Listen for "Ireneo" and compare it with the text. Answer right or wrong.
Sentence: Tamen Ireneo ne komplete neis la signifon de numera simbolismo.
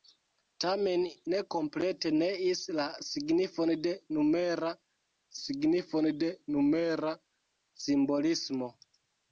wrong